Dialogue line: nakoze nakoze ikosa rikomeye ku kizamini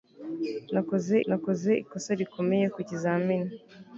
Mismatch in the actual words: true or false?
false